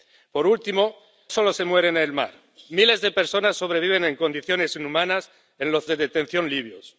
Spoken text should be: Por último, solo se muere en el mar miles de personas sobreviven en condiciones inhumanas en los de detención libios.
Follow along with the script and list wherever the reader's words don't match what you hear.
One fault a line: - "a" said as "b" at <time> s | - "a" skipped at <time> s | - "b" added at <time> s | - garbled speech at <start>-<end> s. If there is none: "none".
none